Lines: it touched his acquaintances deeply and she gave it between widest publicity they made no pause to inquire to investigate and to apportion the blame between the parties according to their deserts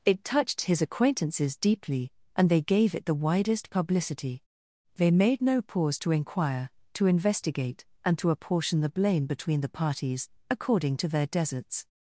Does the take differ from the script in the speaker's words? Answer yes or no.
yes